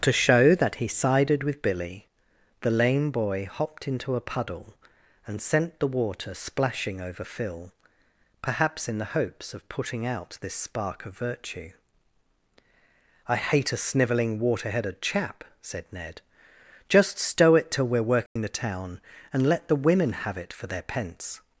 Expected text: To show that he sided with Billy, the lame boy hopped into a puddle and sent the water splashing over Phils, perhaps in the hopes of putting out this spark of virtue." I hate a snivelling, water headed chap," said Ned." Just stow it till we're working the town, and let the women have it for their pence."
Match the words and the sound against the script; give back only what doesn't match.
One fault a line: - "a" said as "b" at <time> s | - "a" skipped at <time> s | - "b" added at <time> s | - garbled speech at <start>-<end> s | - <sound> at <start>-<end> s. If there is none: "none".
- "Phils" said as "Phil" at 7.2 s
- dropout at 18.3-18.4 s